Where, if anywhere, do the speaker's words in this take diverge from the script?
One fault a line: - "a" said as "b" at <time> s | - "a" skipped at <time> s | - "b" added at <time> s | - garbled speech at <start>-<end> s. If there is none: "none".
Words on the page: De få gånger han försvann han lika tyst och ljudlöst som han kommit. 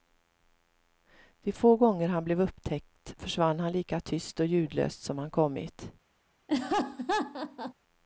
- "blev upptäckt" added at 2.2 s